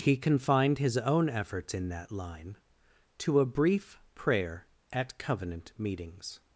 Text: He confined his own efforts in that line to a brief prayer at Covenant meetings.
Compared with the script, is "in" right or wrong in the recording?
right